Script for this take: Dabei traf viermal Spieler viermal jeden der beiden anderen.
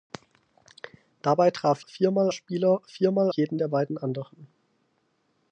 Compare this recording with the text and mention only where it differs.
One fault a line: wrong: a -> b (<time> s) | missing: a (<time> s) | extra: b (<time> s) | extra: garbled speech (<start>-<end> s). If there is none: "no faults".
no faults